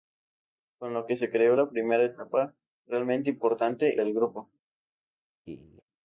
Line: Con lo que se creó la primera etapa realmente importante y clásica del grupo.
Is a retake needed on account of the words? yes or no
yes